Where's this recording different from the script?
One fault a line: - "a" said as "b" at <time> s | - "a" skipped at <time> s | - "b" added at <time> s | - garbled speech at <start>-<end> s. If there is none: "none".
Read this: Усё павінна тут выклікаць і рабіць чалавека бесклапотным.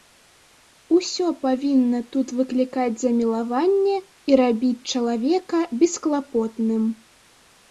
- "замілаванне" added at 3.0 s